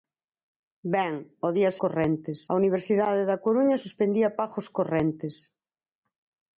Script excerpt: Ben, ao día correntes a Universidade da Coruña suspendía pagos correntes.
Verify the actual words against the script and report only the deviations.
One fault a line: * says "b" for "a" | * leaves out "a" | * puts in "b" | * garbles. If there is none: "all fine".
all fine